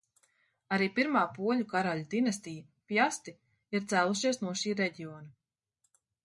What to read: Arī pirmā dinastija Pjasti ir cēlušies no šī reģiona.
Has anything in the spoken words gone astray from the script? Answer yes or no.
yes